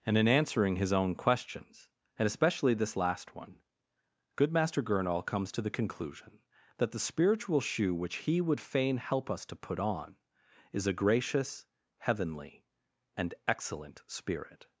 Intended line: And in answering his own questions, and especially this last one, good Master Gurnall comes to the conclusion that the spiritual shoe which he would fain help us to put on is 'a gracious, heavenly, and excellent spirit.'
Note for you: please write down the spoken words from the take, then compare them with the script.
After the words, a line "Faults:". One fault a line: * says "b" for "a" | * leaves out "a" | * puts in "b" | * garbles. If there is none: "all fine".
And in answering his own questions, and especially this last one, good Master Gurnall comes to the conclusion that the spiritual shoe which he would fain help us to put on is 'a gracious, heavenly, and excellent spirit.'
Faults:
all fine